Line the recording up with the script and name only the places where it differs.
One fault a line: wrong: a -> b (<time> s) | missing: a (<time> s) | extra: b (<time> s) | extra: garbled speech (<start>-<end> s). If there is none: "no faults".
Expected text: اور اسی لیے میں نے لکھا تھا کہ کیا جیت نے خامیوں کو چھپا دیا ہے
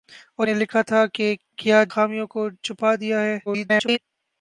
missing: اسی لیے میں (0.5 s)
missing: جیت نے (1.8 s)
extra: garbled speech (3.5-4.0 s)